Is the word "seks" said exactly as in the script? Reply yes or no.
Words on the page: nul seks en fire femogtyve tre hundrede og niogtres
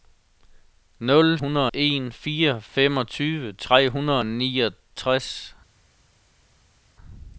no